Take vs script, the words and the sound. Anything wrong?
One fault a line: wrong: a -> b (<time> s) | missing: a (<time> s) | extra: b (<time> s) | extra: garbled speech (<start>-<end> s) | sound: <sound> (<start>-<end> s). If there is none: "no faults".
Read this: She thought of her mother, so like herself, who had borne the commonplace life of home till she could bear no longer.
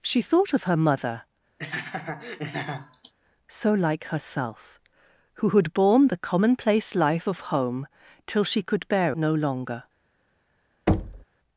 sound: laugh (1.6-3.1 s)
sound: thud (10.9-11.2 s)